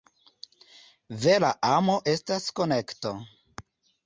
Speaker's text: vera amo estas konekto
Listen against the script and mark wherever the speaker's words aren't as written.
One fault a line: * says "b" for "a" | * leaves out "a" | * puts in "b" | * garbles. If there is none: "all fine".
all fine